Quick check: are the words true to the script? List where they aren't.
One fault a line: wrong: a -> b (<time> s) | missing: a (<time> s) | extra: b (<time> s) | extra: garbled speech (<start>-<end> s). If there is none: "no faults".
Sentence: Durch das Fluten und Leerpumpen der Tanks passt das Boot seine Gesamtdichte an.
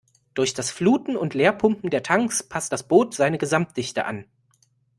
no faults